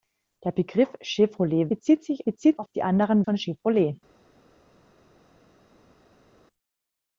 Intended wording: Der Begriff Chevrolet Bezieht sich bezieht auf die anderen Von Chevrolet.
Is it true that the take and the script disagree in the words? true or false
false